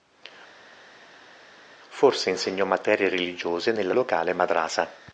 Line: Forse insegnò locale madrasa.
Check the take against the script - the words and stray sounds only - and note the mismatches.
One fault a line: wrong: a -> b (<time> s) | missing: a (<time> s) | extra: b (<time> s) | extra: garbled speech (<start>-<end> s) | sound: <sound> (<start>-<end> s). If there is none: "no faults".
extra: materie religiose nella (2.6 s)